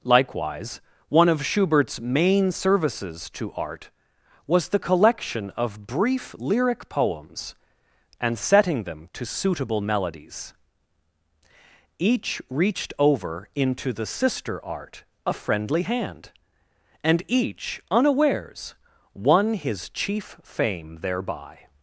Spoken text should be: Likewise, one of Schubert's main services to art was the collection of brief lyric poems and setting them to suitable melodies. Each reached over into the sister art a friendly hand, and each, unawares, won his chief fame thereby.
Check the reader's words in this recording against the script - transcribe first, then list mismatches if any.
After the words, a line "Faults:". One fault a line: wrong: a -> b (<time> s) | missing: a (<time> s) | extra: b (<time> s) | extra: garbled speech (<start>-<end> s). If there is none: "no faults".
Likewise, one of Schubert's main services to art was the collection of brief lyric poems and setting them to suitable melodies. Each reached over into the sister art a friendly hand, and each, unawares, won his chief fame thereby.
Faults:
no faults